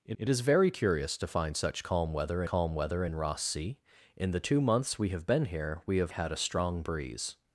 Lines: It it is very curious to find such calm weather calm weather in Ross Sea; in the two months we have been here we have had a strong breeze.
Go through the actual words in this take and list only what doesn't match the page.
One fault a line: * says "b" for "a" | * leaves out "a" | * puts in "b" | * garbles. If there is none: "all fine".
all fine